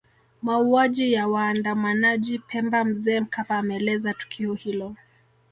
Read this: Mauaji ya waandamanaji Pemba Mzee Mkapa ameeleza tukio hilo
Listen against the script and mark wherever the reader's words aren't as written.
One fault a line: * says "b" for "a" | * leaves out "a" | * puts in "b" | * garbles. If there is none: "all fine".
all fine